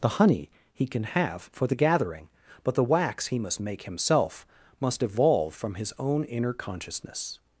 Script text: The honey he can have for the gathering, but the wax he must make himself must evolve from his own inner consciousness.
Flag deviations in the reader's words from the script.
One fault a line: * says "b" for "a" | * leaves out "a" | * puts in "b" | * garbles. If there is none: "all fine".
all fine